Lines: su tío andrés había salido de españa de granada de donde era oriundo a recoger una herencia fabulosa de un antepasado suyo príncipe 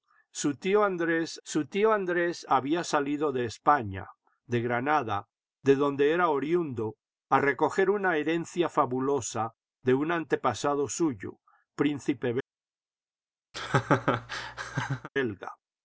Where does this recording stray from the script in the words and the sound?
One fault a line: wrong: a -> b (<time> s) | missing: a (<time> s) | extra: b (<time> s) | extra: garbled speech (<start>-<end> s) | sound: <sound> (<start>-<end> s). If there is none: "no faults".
extra: su tío andrés (1.4 s)
sound: laugh (13.5-15.1 s)